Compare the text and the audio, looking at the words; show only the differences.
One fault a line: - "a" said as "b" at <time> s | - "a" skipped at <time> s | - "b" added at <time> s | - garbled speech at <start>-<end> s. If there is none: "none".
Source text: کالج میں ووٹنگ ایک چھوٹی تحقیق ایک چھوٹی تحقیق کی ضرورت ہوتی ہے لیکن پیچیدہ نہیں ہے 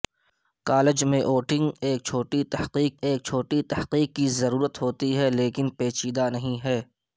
none